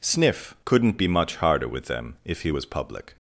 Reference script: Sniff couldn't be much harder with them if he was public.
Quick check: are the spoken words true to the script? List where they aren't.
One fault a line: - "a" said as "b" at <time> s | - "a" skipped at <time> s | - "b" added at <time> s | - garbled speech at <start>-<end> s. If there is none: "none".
none